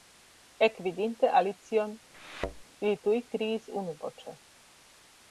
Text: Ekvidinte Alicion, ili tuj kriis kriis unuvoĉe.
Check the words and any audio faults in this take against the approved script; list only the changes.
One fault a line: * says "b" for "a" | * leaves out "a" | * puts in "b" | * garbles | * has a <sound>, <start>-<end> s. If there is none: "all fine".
* has a thud, 2.1-2.6 s
* leaves out "kriis"